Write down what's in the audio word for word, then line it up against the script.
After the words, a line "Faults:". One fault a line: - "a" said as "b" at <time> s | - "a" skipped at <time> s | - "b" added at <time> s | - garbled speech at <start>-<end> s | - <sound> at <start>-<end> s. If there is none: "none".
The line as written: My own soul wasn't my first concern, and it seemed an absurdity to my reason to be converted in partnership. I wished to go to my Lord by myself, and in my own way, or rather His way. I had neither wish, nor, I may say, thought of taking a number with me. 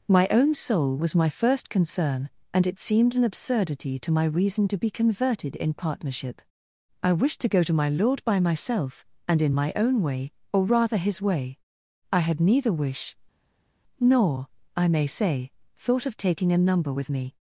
My own soul was my first concern, and it seemed an absurdity to my reason to be converted in partnership. I wished to go to my Lord by myself, and in my own way, or rather His way. I had neither wish, nor, I may say, thought of taking a number with me.
Faults:
- "wasn't" said as "was" at 1.0 s